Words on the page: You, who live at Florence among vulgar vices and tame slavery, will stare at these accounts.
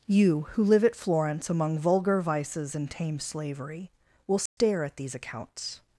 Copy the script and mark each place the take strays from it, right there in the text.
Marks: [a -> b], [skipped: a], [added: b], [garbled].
You, who live at Florence among vulgar vices and tame slavery, will stare at these accounts.